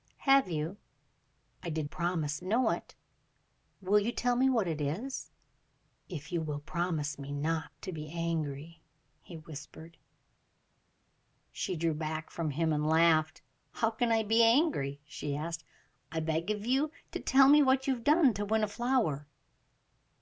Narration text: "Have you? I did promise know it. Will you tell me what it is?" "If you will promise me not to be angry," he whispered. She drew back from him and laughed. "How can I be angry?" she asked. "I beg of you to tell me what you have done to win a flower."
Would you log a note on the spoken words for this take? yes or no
no